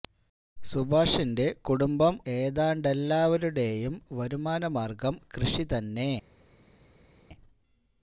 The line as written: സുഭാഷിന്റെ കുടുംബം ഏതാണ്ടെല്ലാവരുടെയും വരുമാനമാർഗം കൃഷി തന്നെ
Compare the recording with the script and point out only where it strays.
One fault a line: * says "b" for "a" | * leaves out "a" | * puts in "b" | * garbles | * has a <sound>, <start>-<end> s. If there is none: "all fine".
all fine